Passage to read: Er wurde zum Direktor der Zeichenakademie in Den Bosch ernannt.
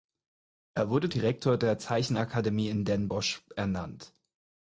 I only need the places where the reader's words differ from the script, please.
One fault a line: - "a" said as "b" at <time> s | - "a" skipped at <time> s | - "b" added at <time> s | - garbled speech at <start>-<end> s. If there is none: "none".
- "zum" skipped at 1.1 s